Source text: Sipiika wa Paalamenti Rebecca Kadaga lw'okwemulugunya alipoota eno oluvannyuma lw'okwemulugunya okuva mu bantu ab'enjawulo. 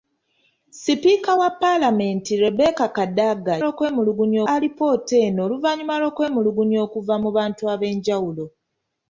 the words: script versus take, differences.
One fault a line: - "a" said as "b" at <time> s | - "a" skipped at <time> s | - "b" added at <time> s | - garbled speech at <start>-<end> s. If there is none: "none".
none